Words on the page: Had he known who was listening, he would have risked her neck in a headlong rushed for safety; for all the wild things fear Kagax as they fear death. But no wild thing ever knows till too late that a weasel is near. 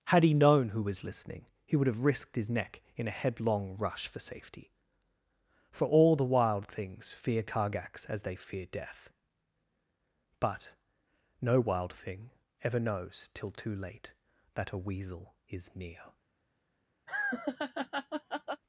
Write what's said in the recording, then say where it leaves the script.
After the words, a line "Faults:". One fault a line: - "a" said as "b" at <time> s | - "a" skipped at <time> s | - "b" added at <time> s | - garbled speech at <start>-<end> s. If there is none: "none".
Had he known who was listening, he would have risked his neck in a headlong rush for safety; for all the wild things fear Kagax as they fear death. But no wild thing ever knows till too late that a weasel is near.
Faults:
- "her" said as "his" at 2.4 s
- "rushed" said as "rush" at 3.8 s